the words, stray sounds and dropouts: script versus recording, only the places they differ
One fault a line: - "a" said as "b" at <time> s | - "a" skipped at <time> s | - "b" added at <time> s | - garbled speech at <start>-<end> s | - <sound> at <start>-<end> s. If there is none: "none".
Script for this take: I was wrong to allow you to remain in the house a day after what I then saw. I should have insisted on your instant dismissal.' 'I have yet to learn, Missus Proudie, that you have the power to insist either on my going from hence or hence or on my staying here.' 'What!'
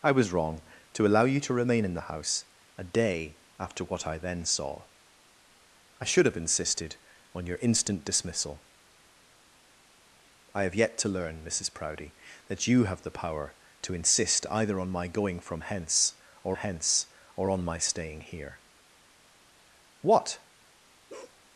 - bark at 21.1-21.4 s